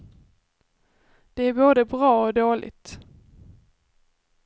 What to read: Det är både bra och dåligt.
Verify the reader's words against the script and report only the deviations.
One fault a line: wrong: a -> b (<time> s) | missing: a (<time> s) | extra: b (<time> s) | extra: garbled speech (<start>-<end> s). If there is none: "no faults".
no faults